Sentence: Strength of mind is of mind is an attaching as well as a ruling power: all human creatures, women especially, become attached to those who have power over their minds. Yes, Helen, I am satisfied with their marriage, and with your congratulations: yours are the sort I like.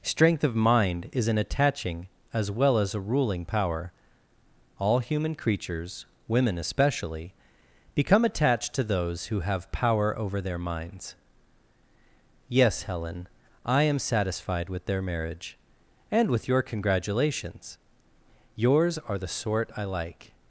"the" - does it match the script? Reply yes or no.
yes